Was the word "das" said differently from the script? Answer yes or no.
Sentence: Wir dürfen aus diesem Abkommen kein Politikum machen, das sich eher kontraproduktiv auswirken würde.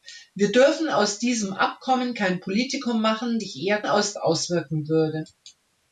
yes